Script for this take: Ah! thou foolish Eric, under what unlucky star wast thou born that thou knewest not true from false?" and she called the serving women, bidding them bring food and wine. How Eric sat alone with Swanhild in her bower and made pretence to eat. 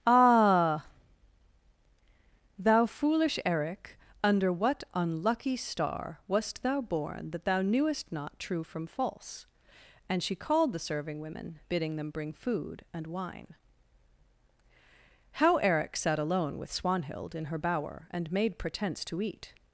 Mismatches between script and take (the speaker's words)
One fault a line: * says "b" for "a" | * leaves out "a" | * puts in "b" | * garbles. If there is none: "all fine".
all fine